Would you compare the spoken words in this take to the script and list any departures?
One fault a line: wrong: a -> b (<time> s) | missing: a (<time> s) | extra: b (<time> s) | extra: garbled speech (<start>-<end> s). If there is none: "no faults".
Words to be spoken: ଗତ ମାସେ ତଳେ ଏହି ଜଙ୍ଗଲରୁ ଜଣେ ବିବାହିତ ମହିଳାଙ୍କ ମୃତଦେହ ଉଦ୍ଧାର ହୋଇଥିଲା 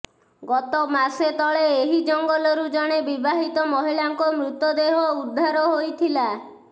no faults